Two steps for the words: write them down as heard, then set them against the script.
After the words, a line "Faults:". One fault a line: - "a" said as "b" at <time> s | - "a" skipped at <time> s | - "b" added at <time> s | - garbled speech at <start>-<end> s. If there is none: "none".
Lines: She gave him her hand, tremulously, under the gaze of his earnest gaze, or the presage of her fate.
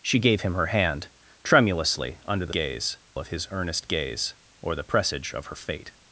She gave him her hand, tremulously, under the gaze of his earnest gaze, or the presage of her fate.
Faults:
none